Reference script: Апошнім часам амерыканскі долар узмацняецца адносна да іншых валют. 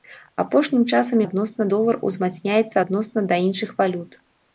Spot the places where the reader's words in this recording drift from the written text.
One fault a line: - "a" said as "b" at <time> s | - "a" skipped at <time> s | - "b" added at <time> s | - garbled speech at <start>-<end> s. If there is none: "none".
- "амерыканскі" said as "адносна" at 1.3 s